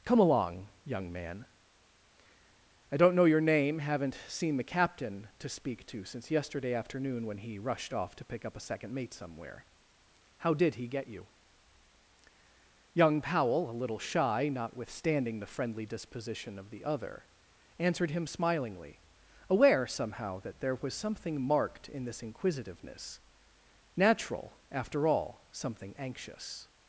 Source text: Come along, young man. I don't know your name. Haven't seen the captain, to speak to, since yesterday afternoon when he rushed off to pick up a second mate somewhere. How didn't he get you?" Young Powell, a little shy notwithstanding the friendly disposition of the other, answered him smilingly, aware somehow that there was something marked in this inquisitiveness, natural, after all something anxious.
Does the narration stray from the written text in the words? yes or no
yes